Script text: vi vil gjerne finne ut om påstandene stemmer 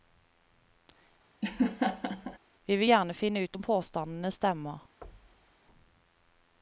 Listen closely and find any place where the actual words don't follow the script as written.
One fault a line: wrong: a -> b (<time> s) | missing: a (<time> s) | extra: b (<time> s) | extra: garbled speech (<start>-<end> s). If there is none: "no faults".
no faults